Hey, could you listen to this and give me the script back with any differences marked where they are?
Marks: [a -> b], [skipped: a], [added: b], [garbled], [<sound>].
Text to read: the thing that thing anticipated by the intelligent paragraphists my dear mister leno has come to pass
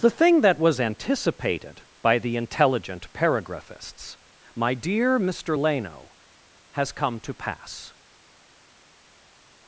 the thing that [thing -> was] anticipated by the intelligent paragraphists my dear mister leno has come to pass